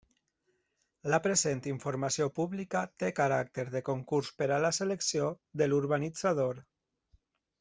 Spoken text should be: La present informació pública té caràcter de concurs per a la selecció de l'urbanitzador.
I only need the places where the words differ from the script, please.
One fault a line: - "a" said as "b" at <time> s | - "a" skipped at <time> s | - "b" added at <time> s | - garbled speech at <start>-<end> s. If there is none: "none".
none